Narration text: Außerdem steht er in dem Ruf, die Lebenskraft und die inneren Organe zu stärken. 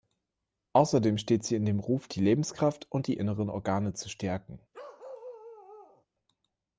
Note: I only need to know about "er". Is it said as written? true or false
false